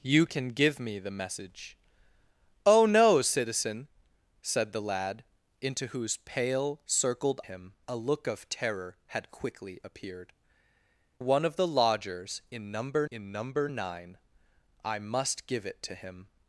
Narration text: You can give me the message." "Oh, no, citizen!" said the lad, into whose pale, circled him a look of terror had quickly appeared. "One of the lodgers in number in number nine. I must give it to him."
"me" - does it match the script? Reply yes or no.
yes